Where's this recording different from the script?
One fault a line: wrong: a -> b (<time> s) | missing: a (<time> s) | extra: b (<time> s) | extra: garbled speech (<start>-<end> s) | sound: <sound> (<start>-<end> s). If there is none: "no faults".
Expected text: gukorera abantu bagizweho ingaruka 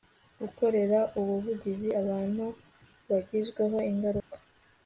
extra: ubuvugizi (1.2 s)
sound: dropout (4.2-4.3 s)